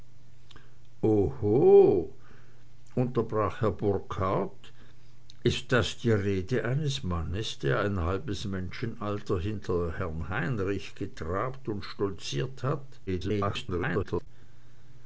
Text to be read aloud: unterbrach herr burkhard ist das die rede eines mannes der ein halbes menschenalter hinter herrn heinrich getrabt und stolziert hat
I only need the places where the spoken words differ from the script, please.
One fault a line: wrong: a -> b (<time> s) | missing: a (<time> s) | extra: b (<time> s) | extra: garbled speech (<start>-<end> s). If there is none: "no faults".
extra: garbled speech (13.1-14.3 s)